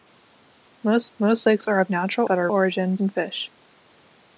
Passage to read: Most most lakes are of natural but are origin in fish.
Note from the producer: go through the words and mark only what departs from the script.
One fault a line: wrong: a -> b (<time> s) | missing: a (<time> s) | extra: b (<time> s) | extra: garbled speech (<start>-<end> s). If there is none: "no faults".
no faults